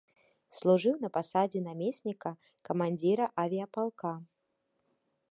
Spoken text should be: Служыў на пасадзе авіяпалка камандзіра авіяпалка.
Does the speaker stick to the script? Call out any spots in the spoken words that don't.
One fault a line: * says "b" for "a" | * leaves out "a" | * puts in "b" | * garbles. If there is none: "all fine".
* says "намесніка" for "авіяпалка"